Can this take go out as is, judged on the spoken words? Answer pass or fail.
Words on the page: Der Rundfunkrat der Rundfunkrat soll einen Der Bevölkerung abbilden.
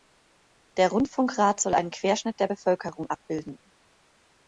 fail